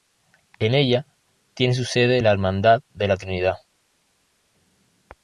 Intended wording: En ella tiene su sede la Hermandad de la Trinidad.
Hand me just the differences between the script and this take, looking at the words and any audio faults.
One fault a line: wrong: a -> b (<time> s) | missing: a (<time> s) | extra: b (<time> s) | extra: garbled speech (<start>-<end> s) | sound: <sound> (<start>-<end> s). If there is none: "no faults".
no faults